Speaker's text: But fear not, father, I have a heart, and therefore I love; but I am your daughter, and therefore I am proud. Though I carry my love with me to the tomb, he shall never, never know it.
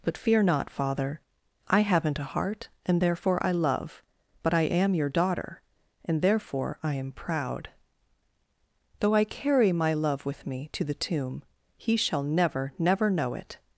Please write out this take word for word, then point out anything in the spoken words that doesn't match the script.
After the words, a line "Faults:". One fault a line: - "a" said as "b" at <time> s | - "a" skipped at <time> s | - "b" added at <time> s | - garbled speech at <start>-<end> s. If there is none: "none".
But fear not, father, I haven't a heart, and therefore I love; but I am your daughter, and therefore I am proud. Though I carry my love with me to the tomb, he shall never, never know it.
Faults:
- "have" said as "haven't" at 1.8 s